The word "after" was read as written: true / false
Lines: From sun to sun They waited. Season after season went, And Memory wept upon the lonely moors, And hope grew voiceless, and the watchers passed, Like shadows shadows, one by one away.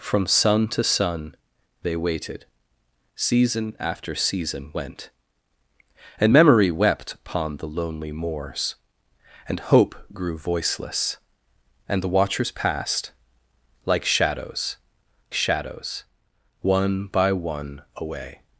true